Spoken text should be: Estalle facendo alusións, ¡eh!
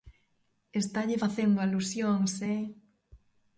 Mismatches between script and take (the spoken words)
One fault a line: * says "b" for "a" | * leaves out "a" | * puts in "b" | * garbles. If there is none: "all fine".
all fine